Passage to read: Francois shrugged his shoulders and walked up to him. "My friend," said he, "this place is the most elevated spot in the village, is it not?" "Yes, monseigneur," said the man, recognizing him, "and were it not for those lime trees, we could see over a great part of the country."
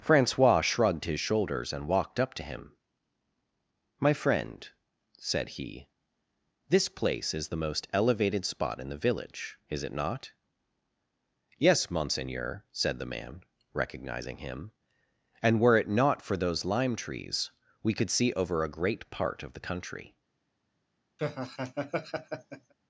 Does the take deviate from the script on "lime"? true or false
false